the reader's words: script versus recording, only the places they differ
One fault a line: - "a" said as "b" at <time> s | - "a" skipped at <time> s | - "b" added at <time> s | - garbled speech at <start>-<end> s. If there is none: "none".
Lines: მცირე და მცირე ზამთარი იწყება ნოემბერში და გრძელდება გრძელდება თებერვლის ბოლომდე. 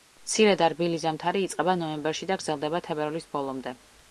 - "მცირე" said as "რბილი" at 0.7 s
- "გრძელდება" skipped at 2.8 s